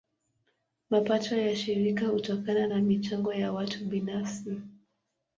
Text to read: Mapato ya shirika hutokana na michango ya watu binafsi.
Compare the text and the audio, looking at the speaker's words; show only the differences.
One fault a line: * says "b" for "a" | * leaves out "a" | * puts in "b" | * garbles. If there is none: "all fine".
all fine